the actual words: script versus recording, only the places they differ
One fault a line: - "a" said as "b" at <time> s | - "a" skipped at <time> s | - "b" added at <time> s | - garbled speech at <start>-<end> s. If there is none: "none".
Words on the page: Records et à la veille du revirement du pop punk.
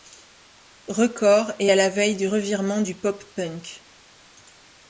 none